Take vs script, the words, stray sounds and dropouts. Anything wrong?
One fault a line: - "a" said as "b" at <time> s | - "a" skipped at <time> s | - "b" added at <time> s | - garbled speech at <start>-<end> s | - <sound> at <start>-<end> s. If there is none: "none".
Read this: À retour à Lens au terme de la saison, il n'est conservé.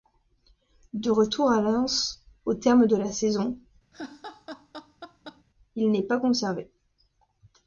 - "À" said as "De" at 0.9 s
- laugh at 3.9-5.4 s
- "pas" added at 6.0 s